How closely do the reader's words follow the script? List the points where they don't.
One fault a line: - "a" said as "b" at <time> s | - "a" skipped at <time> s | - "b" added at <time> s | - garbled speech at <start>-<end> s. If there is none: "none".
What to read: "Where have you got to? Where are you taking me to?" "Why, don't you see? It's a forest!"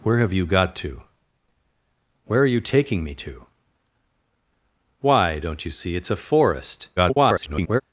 - garbled speech at 7.0-7.8 s